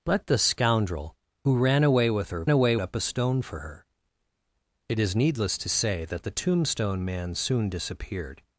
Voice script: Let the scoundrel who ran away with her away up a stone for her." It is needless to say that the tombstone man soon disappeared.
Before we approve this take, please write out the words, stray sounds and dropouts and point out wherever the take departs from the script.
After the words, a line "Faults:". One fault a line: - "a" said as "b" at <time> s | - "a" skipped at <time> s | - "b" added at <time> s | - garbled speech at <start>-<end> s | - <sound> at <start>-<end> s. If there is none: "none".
Let the scoundrel who ran away with her away up a stone for her." It is needless to say that the tombstone man soon disappeared.
Faults:
none